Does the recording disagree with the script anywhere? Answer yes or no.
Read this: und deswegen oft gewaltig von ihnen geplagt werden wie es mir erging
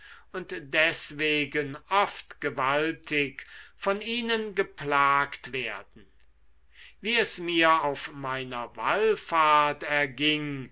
yes